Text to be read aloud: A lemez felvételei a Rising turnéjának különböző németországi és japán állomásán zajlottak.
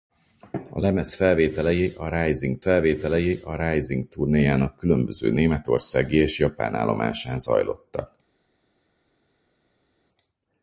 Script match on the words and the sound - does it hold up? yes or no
no